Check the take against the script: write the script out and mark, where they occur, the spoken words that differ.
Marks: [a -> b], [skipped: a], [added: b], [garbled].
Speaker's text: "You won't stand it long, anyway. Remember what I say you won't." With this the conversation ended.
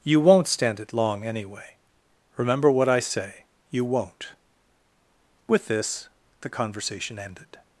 "You won't stand it long, anyway. Remember what I say you won't." With this the conversation ended.